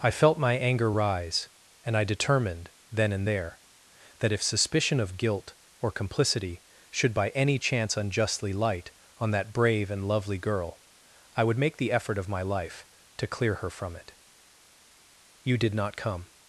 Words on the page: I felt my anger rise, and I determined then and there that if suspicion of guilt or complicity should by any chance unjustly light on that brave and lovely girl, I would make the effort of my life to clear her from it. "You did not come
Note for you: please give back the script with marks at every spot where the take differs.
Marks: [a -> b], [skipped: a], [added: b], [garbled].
I felt my anger rise, and I determined then and there that if suspicion of guilt or complicity should by any chance unjustly light on that brave and lovely girl, I would make the effort of my life to clear her from it. "You did not come